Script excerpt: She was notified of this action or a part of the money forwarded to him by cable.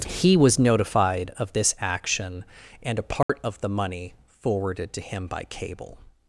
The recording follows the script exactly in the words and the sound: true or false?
false